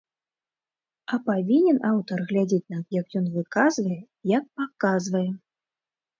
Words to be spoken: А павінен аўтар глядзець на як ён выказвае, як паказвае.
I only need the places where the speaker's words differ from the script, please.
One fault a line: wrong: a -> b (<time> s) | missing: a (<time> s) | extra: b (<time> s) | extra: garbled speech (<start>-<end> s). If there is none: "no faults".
no faults